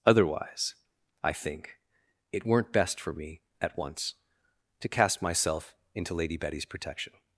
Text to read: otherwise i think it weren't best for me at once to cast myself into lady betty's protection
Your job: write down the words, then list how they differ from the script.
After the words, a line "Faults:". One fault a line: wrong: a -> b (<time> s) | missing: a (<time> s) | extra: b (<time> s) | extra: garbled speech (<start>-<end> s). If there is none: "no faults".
otherwise i think it weren't best for me at once to cast myself into lady betty's protection
Faults:
no faults